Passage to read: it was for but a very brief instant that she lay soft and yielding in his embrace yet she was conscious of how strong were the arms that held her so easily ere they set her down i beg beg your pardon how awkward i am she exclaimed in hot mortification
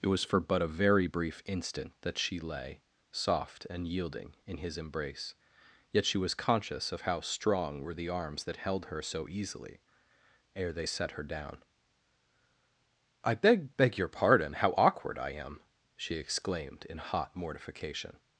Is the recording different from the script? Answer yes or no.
no